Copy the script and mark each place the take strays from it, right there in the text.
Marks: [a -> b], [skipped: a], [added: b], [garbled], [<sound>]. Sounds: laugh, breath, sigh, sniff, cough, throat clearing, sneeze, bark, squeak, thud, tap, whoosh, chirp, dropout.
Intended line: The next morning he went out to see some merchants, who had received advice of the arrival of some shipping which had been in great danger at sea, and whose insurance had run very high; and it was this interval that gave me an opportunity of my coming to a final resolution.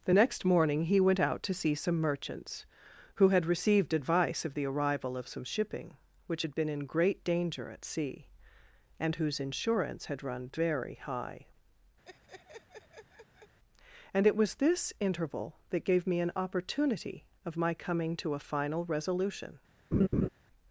The next morning he went out to see some merchants, who had received advice of the arrival of some shipping which had been in great danger at sea, and whose insurance had run very high; [laugh] and it was this interval that gave me an opportunity of my coming to a final resolution. [laugh]